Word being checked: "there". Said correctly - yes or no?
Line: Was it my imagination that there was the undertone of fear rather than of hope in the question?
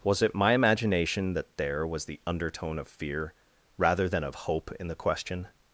yes